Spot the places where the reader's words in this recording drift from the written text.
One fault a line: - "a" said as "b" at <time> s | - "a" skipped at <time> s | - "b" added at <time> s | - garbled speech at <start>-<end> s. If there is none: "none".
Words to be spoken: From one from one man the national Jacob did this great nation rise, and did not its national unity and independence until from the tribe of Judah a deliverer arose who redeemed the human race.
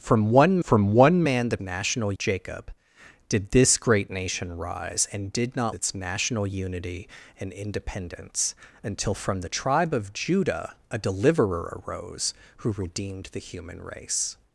none